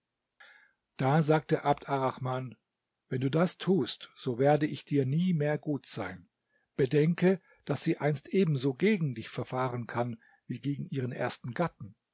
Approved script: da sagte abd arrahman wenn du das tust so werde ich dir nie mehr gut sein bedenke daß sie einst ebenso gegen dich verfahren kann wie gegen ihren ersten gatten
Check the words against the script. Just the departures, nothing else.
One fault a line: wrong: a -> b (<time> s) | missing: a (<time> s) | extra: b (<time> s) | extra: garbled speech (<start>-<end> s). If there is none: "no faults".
no faults